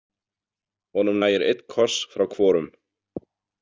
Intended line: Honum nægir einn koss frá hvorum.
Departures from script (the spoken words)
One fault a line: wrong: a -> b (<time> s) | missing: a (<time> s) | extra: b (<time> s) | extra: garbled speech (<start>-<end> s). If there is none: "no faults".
no faults